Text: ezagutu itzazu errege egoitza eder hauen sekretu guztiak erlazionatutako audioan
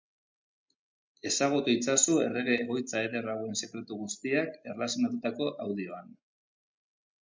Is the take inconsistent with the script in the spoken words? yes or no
no